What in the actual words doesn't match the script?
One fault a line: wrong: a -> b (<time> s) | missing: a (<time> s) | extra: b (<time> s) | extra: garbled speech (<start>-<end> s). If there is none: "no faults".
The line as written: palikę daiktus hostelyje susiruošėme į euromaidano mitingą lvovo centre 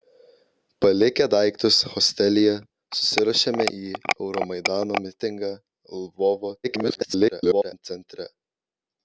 extra: garbled speech (6.6-7.8 s)